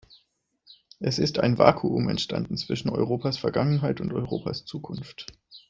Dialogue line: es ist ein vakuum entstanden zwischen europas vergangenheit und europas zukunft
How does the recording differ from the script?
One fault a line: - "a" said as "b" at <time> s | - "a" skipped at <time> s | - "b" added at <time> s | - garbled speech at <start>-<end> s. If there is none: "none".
none